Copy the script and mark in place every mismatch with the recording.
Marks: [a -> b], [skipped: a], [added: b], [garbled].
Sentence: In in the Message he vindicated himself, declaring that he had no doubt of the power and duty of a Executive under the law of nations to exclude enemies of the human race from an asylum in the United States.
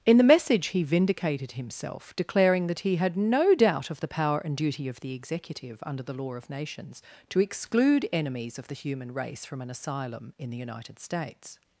In [skipped: in] the Message he vindicated himself, declaring that he had no doubt of the power and duty of [a -> the] Executive under the law of nations to exclude enemies of the human race from an asylum in the United States.